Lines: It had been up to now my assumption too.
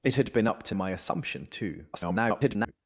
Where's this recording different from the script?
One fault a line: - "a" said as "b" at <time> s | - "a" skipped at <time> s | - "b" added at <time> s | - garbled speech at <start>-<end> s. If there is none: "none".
- "now" skipped at 0.7 s
- garbled speech at 1.9-2.7 s